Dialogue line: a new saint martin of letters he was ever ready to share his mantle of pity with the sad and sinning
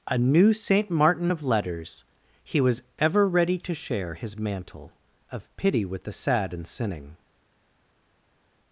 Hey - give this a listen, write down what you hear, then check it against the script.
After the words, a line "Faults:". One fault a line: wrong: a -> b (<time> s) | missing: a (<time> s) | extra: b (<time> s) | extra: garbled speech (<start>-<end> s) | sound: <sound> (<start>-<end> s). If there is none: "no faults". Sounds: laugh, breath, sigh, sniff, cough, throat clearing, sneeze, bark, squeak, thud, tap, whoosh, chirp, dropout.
a new saint martin of letters he was ever ready to share his mantle of pity with the sad and sinning
Faults:
no faults